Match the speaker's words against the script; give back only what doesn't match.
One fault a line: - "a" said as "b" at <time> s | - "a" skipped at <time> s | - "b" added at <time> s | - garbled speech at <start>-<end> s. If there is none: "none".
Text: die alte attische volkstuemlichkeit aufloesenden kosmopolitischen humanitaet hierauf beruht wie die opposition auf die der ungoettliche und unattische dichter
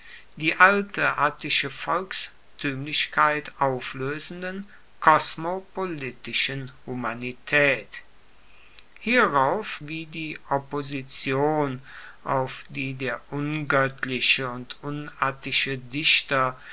- "beruht" skipped at 9.8 s